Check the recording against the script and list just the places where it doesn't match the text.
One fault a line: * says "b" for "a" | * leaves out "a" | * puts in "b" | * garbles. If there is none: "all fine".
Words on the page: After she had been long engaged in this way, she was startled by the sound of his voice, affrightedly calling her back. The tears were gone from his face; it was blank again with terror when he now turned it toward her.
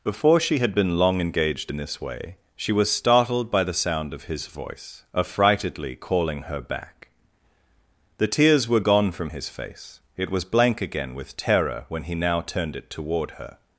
* says "Before" for "After"